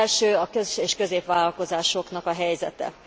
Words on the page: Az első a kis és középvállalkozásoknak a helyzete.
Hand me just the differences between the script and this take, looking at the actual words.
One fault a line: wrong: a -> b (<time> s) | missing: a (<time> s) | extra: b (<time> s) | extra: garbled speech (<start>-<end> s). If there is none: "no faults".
no faults